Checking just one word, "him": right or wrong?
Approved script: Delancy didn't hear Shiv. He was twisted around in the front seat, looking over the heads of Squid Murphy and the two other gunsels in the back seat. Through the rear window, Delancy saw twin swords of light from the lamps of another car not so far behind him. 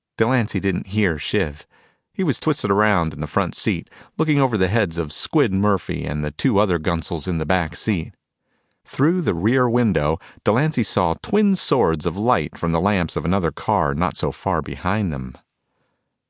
wrong